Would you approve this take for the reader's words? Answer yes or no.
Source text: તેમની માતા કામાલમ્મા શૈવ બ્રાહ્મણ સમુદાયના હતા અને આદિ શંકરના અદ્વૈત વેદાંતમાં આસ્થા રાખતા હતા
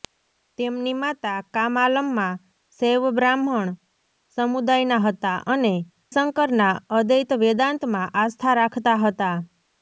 no